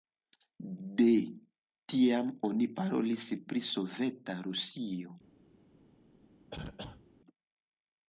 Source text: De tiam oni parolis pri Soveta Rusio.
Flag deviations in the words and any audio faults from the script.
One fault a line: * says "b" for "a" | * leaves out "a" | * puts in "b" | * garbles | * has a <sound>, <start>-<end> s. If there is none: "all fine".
* has a cough, 6.5-7.0 s